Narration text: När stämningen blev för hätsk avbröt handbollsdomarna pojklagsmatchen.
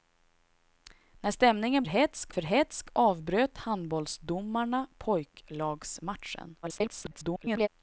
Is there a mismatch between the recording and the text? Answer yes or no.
yes